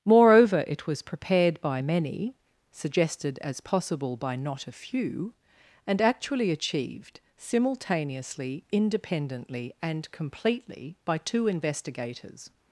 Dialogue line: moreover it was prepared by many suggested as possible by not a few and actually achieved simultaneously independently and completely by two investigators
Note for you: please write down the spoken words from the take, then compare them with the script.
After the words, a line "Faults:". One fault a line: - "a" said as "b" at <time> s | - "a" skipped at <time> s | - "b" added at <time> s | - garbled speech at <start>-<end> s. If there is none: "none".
moreover it was prepared by many suggested as possible by not a few and actually achieved simultaneously independently and completely by two investigators
Faults:
none